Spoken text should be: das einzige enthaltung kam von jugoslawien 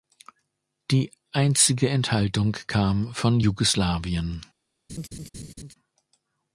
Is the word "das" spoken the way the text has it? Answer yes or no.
no